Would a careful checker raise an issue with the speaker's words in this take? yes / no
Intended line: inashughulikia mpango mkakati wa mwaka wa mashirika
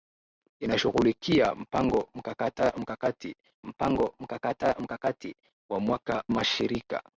yes